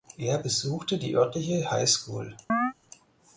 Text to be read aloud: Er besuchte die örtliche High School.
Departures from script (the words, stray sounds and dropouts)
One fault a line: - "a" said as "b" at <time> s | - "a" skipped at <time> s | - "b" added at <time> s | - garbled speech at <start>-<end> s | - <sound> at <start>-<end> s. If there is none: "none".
- chirp at 2.5-2.7 s